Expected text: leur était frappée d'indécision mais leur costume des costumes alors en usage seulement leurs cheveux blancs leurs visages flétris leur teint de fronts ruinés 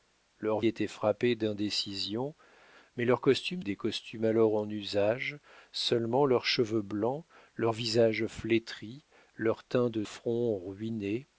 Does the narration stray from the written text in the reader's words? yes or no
no